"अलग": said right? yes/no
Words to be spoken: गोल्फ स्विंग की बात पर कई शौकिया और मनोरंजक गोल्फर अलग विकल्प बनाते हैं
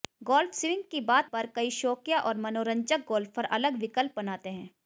yes